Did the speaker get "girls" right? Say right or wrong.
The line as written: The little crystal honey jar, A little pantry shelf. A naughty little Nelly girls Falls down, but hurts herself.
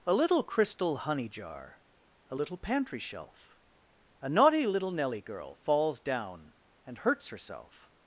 wrong